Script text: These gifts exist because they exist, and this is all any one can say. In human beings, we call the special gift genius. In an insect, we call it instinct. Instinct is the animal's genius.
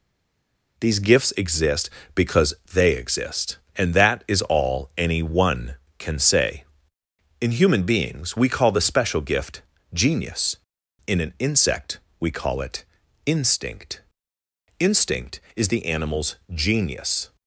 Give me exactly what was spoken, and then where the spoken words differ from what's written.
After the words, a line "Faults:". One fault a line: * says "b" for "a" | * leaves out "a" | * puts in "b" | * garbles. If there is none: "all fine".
These gifts exist because they exist, and that is all any one can say. In human beings, we call the special gift genius. In an insect, we call it instinct. Instinct is the animal's genius.
Faults:
* says "that" for "this"